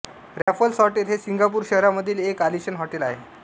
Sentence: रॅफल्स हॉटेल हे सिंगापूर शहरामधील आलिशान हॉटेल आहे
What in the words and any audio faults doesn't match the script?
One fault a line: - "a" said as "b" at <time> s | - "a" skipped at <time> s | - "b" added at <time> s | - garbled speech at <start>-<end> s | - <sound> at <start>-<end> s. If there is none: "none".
- dropout at 0.4-0.5 s
- "एक" added at 2.2 s